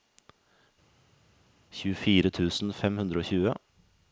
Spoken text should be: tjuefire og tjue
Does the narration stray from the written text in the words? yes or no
yes